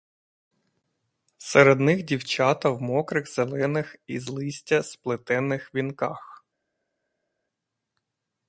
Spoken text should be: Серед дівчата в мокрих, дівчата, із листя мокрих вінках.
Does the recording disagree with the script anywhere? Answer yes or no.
yes